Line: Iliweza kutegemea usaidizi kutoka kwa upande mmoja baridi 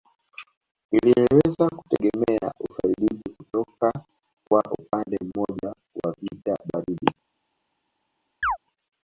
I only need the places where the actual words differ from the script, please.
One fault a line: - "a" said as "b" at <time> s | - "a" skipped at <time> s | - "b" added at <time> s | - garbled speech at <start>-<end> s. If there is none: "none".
- "wa vita" added at 6.0 s